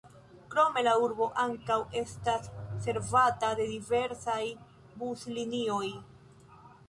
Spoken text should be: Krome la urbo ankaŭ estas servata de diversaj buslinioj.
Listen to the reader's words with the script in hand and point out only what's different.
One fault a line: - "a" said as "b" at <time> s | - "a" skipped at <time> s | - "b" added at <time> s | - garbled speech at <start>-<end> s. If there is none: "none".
none